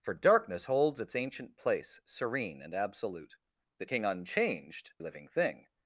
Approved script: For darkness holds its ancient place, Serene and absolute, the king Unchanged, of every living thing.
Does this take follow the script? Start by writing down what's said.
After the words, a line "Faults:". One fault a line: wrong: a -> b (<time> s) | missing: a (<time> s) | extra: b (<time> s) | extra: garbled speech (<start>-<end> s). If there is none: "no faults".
For darkness holds its ancient place, Serene and absolute, the king Unchanged, living thing.
Faults:
missing: of every (4.9 s)